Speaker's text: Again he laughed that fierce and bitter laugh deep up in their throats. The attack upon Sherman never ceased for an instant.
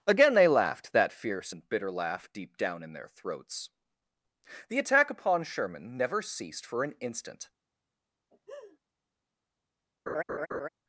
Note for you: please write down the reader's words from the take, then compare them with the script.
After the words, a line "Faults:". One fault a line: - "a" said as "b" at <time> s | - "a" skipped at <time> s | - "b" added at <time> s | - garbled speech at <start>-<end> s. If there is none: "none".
Again they laughed that fierce and bitter laugh deep down in their throats. The attack upon Sherman never ceased for an instant.
Faults:
- "he" said as "they" at 0.3 s
- "up" said as "down" at 2.6 s